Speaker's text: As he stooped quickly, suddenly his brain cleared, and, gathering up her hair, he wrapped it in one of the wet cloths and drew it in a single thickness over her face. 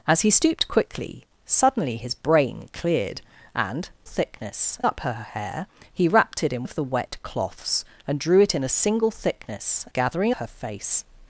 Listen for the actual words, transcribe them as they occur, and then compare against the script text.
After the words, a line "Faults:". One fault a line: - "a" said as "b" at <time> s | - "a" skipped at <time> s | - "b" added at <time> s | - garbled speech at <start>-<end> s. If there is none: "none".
As he stooped quickly, suddenly his brain cleared, and, thickness up her hair, he wrapped it in of the wet cloths and drew it in a single thickness gathering her face.
Faults:
- "gathering" said as "thickness" at 4.0 s
- "one" skipped at 6.7 s
- "over" said as "gathering" at 9.9 s